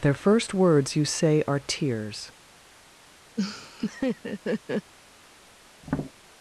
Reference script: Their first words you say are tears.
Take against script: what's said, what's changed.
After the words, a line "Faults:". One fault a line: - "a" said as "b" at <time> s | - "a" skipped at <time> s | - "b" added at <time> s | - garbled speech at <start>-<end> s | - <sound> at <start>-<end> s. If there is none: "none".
Their first words you say are tears.
Faults:
- laugh at 3.4-4.9 s
- tap at 5.8-6.1 s